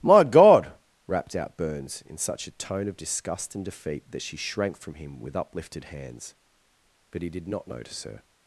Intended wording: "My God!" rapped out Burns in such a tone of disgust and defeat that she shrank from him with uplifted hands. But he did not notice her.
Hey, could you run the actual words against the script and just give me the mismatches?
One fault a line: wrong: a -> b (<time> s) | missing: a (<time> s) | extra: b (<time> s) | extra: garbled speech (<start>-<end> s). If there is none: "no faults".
no faults